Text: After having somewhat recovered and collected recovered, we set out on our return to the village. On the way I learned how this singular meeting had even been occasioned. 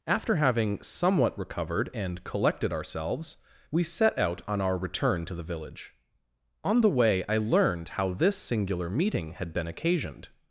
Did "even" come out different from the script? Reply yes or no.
yes